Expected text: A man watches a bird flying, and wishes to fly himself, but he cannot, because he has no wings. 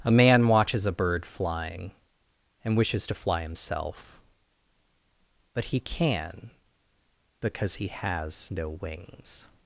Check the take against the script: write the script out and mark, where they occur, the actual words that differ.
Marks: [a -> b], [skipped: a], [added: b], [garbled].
A man watches a bird flying, and wishes to fly himself, but he [cannot, -> can] because he has no wings.